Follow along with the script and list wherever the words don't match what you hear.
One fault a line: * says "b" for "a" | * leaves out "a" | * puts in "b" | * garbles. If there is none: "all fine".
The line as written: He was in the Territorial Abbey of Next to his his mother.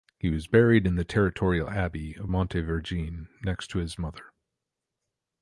* puts in "buried"
* puts in "Montevergine"
* leaves out "his"